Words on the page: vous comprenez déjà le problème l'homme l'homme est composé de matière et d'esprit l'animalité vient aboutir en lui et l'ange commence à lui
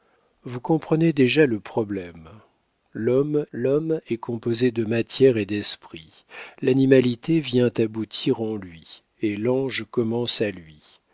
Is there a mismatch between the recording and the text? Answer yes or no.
no